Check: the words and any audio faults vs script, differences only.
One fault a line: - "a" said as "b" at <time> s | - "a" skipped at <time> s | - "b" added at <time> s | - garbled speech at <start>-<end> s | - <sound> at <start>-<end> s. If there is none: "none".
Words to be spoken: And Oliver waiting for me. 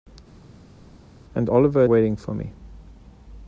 none